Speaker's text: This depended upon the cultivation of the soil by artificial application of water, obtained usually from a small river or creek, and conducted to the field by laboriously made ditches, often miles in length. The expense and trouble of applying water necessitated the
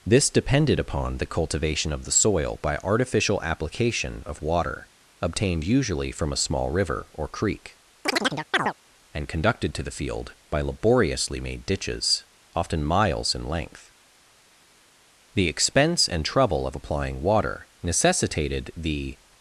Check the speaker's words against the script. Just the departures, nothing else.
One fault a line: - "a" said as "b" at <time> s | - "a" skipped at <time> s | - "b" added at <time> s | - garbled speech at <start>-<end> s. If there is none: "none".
none